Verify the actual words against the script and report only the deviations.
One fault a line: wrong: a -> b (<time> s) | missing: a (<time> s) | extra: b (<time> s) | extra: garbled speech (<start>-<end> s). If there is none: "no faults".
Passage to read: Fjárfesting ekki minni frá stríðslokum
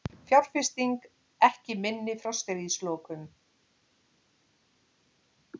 no faults